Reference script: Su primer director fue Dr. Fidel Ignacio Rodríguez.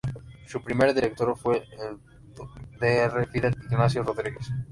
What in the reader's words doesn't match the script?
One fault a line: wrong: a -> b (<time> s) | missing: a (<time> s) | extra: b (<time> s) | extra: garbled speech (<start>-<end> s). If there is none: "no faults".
extra: el (1.6 s)